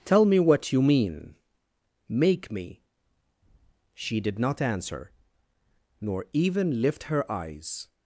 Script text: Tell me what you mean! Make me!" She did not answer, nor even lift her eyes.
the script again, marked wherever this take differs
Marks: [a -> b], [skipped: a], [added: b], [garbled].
Tell me what you mean! Make me!" She did not answer, nor even lift her eyes.